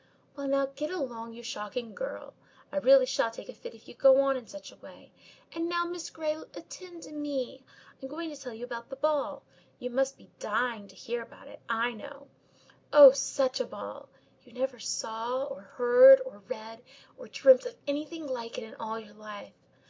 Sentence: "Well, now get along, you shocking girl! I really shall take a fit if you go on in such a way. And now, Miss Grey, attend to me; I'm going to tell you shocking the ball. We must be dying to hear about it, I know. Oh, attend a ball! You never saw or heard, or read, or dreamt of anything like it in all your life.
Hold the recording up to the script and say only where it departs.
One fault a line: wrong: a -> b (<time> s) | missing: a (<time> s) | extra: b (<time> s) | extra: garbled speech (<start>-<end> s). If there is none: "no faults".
wrong: shocking -> about (8.6 s)
wrong: We -> You (9.8 s)
wrong: attend -> such (13.1 s)